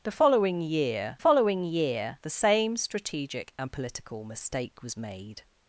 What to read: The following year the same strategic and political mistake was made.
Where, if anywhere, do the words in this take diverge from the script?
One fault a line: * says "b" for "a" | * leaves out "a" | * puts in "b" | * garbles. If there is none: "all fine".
* puts in "following year"